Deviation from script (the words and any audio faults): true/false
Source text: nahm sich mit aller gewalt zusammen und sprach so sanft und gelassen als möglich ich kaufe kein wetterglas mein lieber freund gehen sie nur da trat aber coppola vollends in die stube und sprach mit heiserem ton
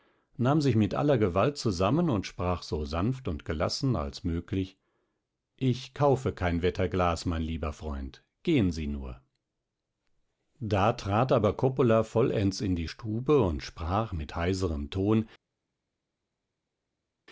false